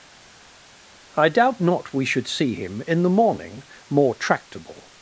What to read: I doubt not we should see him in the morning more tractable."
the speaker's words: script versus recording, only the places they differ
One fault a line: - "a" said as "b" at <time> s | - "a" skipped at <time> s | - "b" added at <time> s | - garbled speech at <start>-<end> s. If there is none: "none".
none